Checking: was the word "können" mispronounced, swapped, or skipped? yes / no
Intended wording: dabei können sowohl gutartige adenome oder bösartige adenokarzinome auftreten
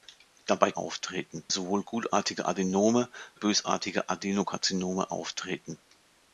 yes